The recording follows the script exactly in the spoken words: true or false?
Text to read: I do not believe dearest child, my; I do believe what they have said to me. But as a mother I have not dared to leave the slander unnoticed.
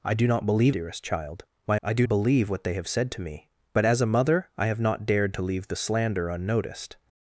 true